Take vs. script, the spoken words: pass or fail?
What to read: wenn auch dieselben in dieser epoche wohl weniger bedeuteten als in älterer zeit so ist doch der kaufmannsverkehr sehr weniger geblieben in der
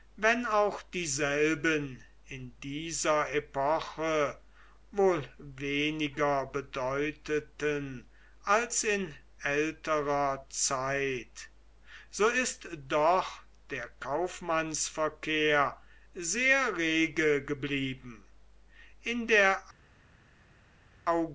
fail